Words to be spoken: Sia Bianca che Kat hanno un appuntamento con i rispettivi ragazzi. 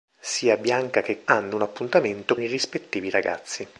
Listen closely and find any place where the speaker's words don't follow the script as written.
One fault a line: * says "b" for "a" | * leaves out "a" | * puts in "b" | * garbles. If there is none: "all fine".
* leaves out "Kat"
* leaves out "con"